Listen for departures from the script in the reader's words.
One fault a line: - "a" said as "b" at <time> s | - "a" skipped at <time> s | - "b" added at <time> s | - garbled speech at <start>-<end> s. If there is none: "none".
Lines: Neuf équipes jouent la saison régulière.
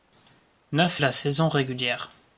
- "équipes jouent" skipped at 1.0 s